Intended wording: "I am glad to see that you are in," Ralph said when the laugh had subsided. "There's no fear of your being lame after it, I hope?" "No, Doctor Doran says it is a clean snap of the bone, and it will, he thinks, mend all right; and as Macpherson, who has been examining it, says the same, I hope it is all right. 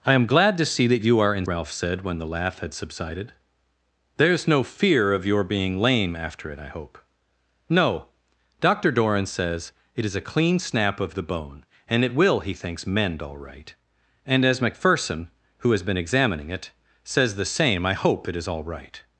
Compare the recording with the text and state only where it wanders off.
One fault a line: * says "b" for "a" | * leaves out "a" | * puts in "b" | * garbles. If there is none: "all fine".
all fine